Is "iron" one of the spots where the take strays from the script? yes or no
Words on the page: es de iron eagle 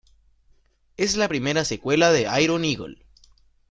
no